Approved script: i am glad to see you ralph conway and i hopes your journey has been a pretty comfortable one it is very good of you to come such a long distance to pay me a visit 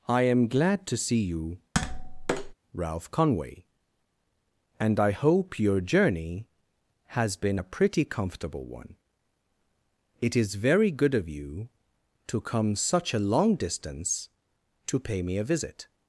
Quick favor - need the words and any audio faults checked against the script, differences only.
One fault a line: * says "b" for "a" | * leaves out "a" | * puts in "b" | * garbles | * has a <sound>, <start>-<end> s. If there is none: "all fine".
* has a tap, 1.7-2.5 s
* says "hope" for "hopes"